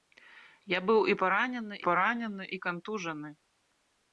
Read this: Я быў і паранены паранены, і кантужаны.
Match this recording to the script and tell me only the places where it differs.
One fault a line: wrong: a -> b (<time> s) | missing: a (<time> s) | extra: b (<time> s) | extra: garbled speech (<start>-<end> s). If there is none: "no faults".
no faults